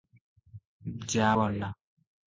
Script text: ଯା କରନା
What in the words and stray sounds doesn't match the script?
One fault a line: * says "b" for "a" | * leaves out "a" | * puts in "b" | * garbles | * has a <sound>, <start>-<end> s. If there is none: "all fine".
all fine